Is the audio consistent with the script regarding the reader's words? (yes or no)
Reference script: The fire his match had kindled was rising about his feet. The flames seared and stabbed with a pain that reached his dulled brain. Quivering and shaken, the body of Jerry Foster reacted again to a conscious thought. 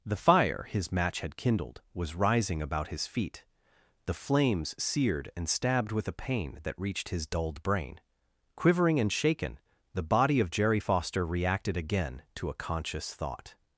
yes